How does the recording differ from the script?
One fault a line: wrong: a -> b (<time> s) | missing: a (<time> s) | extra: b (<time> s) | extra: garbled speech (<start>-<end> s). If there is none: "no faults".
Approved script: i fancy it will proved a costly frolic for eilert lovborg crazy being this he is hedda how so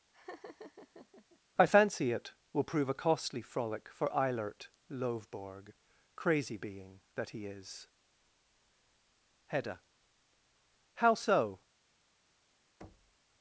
wrong: proved -> prove (2.6 s)
wrong: this -> that (7.1 s)